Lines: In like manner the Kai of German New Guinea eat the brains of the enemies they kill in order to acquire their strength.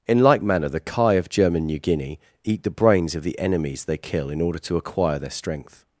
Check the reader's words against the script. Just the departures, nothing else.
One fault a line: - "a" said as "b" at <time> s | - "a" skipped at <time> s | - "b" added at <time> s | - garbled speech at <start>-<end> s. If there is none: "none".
none